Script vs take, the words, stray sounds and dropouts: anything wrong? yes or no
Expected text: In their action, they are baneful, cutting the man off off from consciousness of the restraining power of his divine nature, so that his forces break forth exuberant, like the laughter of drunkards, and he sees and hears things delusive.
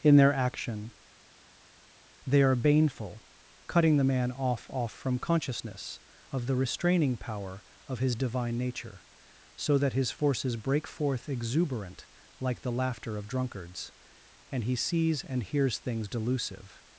no